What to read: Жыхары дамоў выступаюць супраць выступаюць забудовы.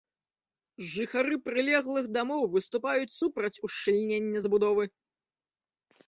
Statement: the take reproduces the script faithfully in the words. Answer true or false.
false